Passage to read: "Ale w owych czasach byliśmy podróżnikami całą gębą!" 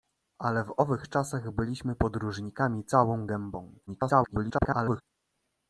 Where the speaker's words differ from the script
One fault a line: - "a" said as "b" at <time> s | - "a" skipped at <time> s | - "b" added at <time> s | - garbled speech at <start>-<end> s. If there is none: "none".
- garbled speech at 3.9-5.0 s